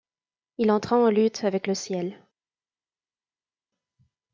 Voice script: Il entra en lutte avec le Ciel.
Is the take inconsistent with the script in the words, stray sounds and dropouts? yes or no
no